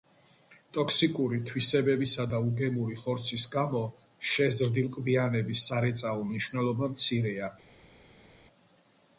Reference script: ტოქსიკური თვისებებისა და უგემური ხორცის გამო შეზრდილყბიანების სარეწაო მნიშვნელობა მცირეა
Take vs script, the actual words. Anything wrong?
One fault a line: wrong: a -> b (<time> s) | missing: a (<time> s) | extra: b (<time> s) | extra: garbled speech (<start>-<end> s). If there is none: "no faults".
no faults